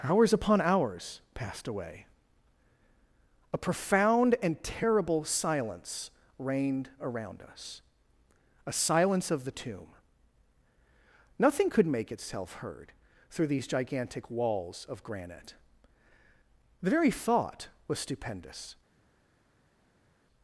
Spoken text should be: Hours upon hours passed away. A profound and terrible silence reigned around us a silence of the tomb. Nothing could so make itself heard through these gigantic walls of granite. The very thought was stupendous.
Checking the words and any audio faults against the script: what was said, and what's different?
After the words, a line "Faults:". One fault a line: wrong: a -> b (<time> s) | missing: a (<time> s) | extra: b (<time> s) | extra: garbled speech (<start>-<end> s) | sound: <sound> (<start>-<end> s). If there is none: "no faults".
Hours upon hours passed away. A profound and terrible silence reigned around us a silence of the tomb. Nothing could make itself heard through these gigantic walls of granite. The very thought was stupendous.
Faults:
missing: so (11.9 s)